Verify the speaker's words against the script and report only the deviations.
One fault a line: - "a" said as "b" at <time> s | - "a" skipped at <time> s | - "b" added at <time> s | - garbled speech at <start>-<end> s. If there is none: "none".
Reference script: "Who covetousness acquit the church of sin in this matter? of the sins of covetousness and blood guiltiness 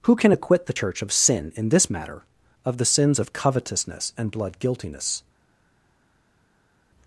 - "covetousness" said as "can" at 0.1 s